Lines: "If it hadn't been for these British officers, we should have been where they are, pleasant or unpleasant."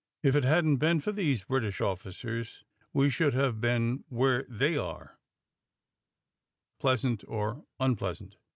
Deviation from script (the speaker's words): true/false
false